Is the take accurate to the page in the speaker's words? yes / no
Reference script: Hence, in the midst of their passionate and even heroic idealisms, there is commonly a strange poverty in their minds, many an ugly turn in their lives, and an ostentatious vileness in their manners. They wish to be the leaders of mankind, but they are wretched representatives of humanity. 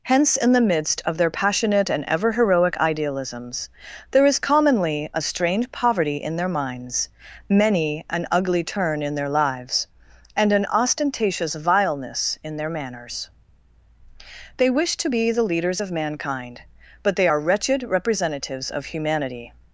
no